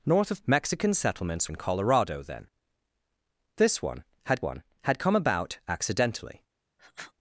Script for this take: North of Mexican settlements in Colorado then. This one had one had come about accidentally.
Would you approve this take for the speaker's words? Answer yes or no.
yes